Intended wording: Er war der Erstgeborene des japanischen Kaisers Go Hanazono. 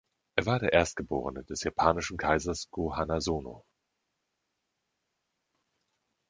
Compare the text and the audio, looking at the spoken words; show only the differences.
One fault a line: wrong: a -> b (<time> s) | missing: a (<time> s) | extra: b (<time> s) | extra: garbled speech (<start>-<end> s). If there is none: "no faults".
no faults